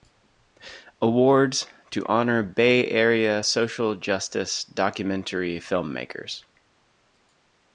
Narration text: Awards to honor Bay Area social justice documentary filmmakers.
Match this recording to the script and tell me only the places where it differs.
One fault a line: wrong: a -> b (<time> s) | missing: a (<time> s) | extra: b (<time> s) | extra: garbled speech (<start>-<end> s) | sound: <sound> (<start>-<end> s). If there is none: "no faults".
no faults